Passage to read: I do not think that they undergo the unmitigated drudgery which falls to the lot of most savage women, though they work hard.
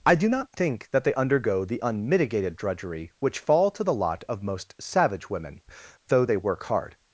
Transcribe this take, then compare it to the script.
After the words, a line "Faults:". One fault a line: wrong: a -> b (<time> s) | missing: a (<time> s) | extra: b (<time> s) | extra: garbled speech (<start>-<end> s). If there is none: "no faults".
I do not think that they undergo the unmitigated drudgery which fall to the lot of most savage women, though they work hard.
Faults:
wrong: falls -> fall (3.4 s)